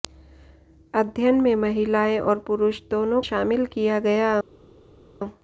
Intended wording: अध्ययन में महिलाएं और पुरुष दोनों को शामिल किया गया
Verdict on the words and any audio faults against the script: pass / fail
fail